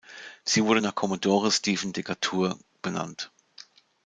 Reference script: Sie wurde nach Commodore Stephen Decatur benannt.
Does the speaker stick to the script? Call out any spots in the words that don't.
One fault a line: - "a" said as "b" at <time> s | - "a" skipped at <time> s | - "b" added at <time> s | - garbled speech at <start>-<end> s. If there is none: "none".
none